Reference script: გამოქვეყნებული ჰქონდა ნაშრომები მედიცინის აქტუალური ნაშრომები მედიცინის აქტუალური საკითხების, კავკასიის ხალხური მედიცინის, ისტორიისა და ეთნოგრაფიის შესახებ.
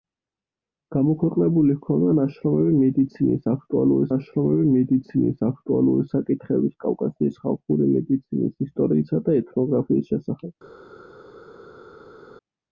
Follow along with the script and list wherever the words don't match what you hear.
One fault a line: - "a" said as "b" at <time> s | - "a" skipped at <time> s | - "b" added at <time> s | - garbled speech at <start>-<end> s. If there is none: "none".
none